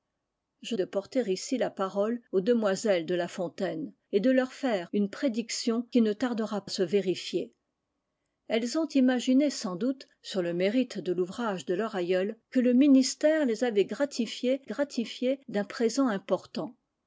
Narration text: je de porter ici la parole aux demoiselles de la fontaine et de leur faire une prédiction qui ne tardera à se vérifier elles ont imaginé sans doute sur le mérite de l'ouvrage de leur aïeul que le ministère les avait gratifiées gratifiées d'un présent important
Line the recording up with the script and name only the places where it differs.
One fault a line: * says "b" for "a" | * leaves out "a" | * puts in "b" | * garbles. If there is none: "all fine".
all fine